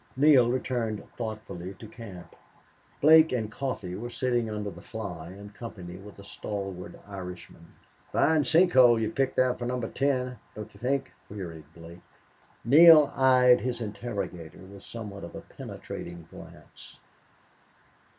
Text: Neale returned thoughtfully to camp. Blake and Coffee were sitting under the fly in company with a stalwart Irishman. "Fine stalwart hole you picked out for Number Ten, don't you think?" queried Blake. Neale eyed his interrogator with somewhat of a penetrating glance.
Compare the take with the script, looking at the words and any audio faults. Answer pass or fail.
fail